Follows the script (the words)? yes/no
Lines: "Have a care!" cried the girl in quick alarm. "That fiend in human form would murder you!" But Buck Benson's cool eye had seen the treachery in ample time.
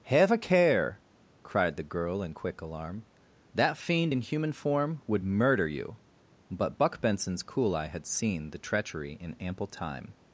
yes